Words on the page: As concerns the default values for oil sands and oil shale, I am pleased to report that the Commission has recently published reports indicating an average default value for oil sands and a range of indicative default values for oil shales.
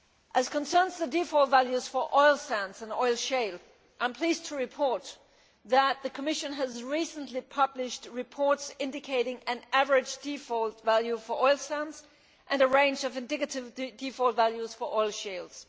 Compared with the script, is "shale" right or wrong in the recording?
right